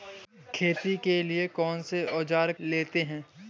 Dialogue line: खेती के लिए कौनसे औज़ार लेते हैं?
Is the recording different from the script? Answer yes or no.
no